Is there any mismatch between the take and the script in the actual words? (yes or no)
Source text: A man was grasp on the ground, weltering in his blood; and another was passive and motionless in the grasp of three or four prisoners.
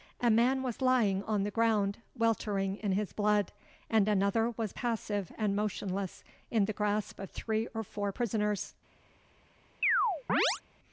yes